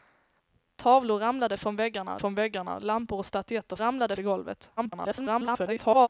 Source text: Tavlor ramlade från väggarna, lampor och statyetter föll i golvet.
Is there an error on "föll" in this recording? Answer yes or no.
yes